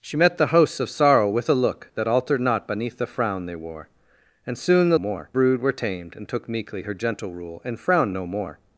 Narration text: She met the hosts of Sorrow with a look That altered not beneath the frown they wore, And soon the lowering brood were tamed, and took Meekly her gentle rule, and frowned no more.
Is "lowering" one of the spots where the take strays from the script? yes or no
yes